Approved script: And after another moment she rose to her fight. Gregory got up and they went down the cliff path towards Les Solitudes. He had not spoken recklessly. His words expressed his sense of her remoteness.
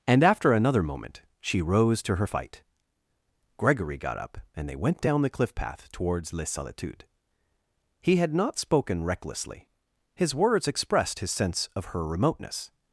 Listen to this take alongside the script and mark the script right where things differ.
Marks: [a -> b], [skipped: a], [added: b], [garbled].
And after another moment she rose to her fight. Gregory got up and they went down the cliff path towards Les Solitudes. He had not spoken recklessly. His words expressed his sense of her remoteness.